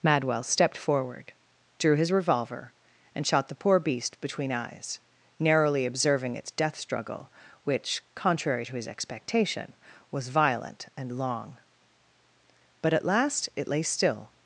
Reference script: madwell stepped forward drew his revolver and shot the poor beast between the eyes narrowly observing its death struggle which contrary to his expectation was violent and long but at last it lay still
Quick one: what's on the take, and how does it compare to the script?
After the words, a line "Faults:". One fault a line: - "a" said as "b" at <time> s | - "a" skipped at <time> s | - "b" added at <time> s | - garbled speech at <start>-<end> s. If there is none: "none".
madwell stepped forward drew his revolver and shot the poor beast between eyes narrowly observing its death struggle which contrary to his expectation was violent and long but at last it lay still
Faults:
- "the" skipped at 4.5 s